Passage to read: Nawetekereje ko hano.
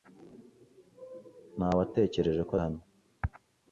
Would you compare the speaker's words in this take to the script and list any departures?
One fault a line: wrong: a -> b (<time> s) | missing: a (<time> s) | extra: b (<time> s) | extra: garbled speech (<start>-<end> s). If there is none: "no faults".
no faults